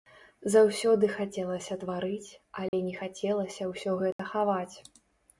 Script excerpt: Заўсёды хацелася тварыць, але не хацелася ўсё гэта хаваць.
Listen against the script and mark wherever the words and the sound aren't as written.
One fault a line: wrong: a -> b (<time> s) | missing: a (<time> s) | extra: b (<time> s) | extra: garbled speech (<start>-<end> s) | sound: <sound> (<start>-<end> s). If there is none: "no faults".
sound: dropout (2.7-2.7 s)
sound: dropout (4.1-4.2 s)